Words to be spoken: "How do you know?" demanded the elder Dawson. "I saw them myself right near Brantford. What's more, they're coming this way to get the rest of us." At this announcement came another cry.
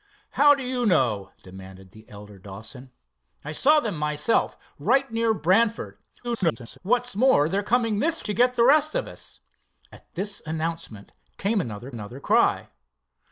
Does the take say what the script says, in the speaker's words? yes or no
no